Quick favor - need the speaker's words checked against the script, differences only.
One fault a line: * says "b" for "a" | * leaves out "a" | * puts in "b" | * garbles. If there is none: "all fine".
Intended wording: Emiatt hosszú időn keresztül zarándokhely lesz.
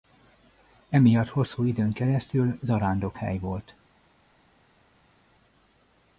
* says "volt" for "lesz"